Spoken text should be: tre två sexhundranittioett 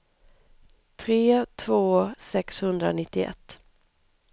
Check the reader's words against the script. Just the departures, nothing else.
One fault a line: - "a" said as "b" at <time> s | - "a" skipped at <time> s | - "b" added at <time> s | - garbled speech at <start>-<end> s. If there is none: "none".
none